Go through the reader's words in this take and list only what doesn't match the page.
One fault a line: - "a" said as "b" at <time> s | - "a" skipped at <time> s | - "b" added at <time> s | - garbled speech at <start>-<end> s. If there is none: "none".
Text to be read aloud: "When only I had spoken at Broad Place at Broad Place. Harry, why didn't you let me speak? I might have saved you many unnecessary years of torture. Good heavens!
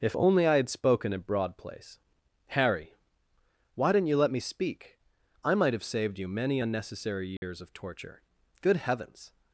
- "When" said as "If" at 0.0 s
- "at Broad Place" skipped at 2.0 s